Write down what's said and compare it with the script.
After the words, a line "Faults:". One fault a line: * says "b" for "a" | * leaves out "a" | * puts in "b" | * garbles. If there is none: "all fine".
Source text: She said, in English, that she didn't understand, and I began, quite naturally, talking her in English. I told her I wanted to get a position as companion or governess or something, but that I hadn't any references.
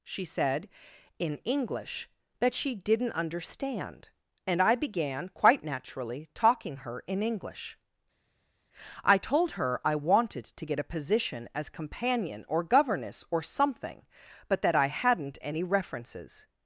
She said, in English, that she didn't understand, and I began, quite naturally, talking her in English. I told her I wanted to get a position as companion or governess or something, but that I hadn't any references.
Faults:
all fine